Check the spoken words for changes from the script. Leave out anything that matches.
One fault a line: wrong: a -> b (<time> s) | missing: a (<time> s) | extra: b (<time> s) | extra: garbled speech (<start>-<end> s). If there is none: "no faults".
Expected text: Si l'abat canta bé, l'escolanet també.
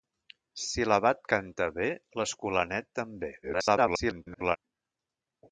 extra: garbled speech (3.4-4.6 s)